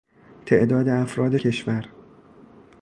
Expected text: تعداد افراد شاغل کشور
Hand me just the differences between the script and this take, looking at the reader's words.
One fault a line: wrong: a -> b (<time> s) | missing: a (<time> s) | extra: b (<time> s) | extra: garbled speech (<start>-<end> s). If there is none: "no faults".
missing: شاغل (1.4 s)